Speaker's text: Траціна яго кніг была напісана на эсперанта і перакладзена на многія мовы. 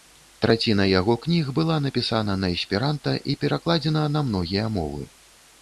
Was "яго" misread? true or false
false